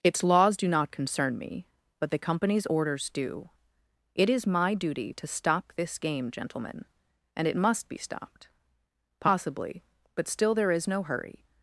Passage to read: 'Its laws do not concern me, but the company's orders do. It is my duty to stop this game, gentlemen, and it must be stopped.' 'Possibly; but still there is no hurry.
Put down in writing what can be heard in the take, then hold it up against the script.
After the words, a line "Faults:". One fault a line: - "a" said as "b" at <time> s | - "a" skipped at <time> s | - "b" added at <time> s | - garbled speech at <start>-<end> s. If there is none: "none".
'Its laws do not concern me, but the company's orders do. It is my duty to stop this game, gentlemen, and it must be stopped.' 'Possibly; but still there is no hurry.
Faults:
none